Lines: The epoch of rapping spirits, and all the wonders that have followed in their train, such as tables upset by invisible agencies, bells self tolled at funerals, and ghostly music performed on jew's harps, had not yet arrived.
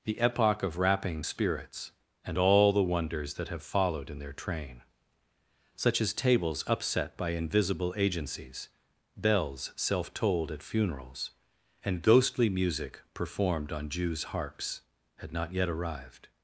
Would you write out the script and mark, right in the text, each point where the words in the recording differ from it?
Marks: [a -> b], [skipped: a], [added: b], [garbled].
The epoch of rapping spirits, and all the wonders that have followed in their train, such as tables upset by invisible agencies, bells self tolled at funerals, and ghostly music performed on jew's harps, had not yet arrived.